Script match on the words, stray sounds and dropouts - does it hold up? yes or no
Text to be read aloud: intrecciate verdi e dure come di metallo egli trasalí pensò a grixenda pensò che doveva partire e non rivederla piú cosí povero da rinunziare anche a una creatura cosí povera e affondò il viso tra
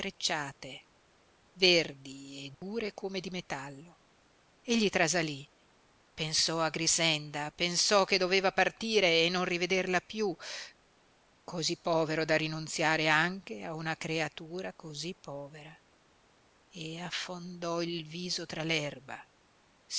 no